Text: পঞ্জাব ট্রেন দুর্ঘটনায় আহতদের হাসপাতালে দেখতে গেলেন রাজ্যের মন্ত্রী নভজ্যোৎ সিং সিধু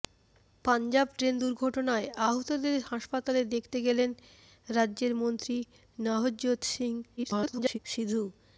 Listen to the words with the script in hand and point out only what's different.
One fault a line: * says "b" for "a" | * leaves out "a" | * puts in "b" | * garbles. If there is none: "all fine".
* garbles